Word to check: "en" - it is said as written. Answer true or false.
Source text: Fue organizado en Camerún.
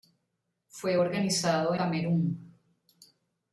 false